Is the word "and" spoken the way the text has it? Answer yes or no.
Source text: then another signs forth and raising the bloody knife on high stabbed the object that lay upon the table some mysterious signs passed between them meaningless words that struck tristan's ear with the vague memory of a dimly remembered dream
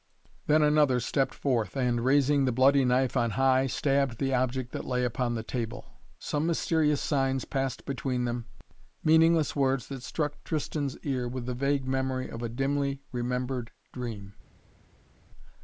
yes